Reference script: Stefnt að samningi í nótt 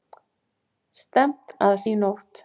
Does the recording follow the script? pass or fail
fail